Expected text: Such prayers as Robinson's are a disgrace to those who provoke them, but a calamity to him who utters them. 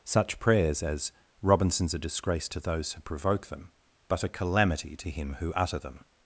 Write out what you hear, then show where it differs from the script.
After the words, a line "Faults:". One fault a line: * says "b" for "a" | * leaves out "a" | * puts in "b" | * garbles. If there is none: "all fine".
Such prayers as Robinson's a disgrace to those who provoke them, but a calamity to him who utter them.
Faults:
* leaves out "are"
* says "utter" for "utters"